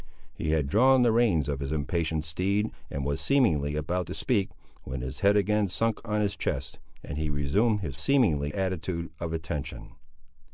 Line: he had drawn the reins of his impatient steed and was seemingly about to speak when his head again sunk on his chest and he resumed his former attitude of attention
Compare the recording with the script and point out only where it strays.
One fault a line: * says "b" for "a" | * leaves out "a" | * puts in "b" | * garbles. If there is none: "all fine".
* says "seemingly" for "former"